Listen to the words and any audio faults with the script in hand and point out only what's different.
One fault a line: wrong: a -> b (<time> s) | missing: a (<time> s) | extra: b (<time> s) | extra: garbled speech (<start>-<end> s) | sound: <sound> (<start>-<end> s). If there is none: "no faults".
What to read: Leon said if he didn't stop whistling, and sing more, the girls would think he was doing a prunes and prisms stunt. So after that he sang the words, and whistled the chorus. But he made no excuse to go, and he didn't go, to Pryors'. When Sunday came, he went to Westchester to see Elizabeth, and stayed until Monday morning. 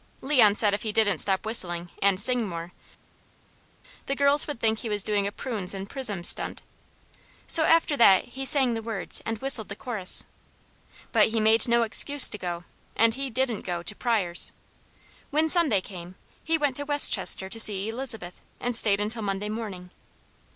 no faults